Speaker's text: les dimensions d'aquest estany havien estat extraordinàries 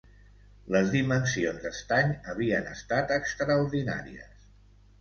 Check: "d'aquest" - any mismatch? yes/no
yes